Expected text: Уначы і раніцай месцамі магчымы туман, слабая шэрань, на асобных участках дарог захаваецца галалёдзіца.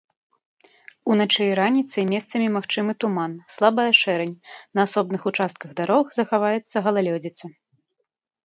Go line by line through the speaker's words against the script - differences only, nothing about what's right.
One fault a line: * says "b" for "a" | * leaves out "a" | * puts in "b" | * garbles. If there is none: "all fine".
all fine